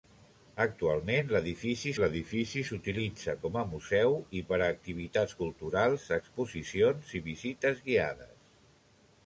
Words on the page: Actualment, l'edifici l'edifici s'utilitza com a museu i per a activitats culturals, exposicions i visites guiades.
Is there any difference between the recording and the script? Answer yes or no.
no